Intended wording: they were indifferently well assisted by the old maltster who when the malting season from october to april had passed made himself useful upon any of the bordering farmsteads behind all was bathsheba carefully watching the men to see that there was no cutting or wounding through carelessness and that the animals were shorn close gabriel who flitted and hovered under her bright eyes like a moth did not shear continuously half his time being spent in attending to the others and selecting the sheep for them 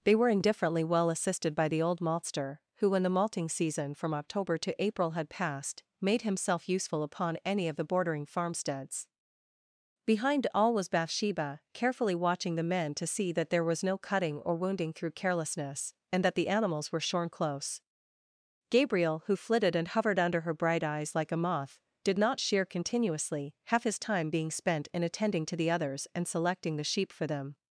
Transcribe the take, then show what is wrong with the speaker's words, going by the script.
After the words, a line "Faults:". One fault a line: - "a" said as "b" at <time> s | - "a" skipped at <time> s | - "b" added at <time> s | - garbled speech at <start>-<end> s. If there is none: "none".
they were indifferently well assisted by the old maltster who when the malting season from october to april had passed made himself useful upon any of the bordering farmsteads behind all was bathsheba carefully watching the men to see that there was no cutting or wounding through carelessness and that the animals were shorn close gabriel who flitted and hovered under her bright eyes like a moth did not shear continuously half his time being spent in attending to the others and selecting the sheep for them
Faults:
none